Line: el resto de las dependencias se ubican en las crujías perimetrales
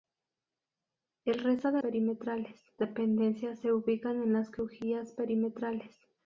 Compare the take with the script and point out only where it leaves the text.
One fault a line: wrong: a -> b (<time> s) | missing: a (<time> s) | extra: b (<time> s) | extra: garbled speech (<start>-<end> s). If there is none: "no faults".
wrong: las -> perimetrales (1.8 s)